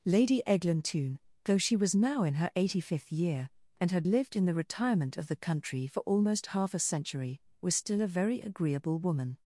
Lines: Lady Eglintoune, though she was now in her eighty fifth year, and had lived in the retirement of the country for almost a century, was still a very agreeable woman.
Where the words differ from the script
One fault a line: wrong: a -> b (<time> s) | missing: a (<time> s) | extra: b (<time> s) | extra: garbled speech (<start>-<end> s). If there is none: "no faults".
extra: half (6.5 s)